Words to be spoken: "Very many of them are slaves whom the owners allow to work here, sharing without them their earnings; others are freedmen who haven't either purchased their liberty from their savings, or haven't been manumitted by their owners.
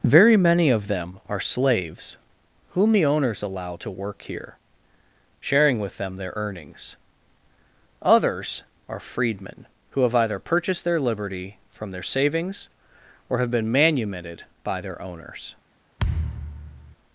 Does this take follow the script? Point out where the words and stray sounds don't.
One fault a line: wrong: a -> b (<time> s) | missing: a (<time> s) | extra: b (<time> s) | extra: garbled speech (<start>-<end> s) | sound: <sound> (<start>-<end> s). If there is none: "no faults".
wrong: without -> with (5.8 s)
wrong: haven't -> have (10.0 s)
wrong: haven't -> have (13.4 s)
sound: thud (16.0-17.0 s)